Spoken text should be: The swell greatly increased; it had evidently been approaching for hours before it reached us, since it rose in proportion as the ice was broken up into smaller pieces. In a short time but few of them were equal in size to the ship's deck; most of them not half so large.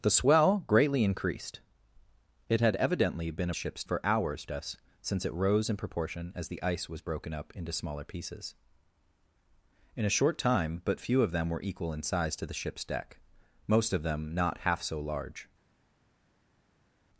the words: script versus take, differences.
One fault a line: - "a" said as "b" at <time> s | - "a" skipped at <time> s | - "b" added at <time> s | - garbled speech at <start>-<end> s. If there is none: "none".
- "approaching" said as "ship's" at 3.5 s
- "before it reached" skipped at 4.5 s